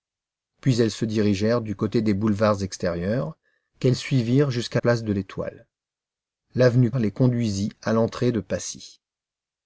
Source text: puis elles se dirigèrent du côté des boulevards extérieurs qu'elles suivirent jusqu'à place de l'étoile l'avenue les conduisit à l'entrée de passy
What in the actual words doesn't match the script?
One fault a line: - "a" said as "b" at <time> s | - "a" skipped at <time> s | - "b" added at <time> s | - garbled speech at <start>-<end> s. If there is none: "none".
none